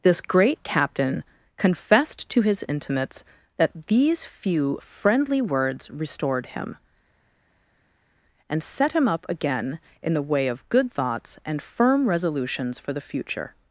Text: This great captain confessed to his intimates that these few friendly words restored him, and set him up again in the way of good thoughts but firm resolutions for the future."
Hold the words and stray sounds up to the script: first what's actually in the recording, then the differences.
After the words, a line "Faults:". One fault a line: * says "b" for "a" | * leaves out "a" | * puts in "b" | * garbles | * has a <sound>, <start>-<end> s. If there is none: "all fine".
This great captain confessed to his intimates that these few friendly words restored him, and set him up again in the way of good thoughts and firm resolutions for the future."
Faults:
* says "and" for "but"